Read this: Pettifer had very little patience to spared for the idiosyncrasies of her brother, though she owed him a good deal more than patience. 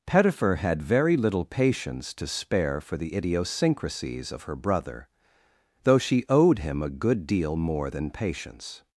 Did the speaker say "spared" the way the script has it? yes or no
no